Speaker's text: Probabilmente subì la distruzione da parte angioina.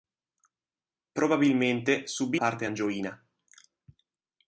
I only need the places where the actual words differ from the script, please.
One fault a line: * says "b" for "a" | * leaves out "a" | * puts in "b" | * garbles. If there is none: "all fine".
* leaves out "la distruzione da"